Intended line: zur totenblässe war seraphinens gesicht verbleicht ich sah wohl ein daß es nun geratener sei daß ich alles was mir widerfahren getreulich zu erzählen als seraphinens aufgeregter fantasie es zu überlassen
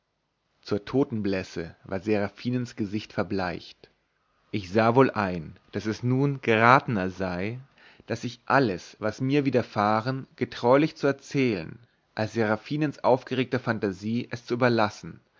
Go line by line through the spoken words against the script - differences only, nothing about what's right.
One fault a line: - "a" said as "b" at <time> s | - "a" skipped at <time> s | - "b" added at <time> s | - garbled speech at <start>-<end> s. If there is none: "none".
none